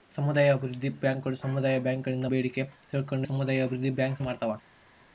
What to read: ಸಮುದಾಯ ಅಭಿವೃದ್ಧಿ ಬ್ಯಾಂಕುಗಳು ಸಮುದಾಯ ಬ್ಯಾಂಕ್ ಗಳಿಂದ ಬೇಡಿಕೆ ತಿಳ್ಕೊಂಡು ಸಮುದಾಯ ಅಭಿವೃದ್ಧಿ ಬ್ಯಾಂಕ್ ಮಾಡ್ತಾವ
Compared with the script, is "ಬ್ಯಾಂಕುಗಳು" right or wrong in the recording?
right